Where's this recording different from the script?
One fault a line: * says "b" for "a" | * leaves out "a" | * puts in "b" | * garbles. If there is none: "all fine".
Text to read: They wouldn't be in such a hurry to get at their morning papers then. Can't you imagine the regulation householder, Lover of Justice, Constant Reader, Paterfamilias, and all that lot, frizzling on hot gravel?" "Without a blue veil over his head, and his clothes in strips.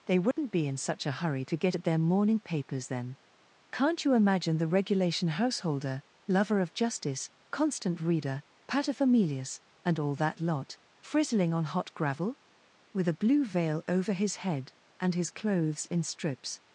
* says "With" for "Without"